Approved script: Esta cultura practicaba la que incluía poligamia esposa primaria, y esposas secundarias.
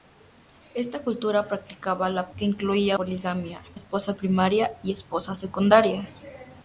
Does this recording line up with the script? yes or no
yes